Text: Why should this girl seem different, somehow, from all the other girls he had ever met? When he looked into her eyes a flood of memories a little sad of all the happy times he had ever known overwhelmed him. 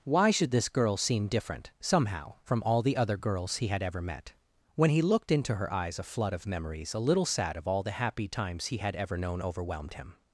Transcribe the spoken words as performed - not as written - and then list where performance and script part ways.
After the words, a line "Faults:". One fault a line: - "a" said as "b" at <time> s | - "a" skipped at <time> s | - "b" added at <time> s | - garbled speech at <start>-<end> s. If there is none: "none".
Why should this girl seem different, somehow, from all the other girls he had ever met? When he looked into her eyes a flood of memories a little sad of all the happy times he had ever known overwhelmed him.
Faults:
none